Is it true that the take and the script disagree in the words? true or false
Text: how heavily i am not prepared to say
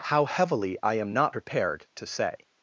false